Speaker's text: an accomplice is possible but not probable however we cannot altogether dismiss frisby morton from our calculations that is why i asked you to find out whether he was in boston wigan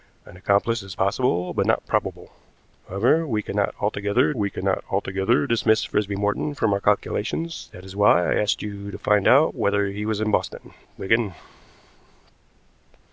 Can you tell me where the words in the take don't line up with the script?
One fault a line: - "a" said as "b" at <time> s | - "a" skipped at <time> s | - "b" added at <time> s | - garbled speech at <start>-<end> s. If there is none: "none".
- "we cannot altogether" added at 4.3 s